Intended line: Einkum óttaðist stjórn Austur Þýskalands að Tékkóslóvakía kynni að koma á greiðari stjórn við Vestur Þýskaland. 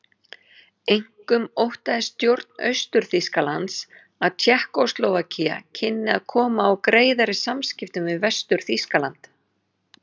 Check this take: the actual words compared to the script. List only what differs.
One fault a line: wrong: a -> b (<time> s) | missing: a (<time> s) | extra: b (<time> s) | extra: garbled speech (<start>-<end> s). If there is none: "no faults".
wrong: stjórn -> samskiptum (7.5 s)